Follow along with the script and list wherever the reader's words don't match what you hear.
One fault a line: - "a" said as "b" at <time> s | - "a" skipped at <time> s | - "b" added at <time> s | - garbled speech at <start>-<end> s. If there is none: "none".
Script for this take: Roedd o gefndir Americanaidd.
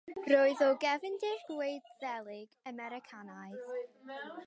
- "Gwyddelig" added at 1.5 s